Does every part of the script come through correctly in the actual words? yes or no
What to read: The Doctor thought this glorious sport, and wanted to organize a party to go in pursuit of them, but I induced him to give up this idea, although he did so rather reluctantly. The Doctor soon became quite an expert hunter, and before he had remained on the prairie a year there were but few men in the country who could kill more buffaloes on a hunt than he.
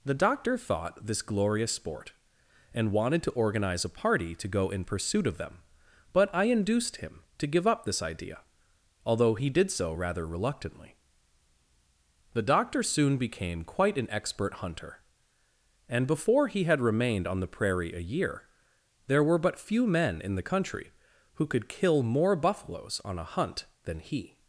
yes